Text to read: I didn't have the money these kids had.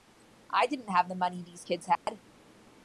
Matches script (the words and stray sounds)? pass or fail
fail